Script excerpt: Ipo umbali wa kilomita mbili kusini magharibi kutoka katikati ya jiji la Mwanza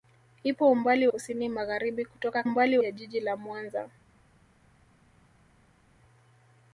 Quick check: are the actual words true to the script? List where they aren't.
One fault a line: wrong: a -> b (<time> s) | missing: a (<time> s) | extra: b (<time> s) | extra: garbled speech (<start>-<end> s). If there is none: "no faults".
missing: wa kilomita mbili (1.1 s)
wrong: katikati -> umbali (2.4 s)